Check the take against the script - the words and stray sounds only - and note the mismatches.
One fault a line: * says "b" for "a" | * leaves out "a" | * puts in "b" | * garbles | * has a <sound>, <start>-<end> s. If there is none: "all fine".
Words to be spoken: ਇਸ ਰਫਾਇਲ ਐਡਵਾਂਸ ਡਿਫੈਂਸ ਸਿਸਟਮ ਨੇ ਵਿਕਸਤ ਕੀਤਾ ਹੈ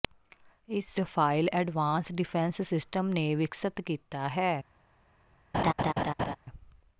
* has a laugh, 5.5-6.4 s